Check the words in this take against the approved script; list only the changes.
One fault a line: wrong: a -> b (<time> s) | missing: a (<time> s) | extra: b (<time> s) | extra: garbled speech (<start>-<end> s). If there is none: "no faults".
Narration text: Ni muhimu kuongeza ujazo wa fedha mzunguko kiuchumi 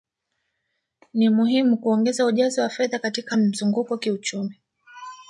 extra: katika (3.0 s)